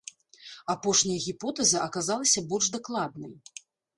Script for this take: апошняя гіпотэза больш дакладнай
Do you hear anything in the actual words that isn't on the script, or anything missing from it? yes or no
yes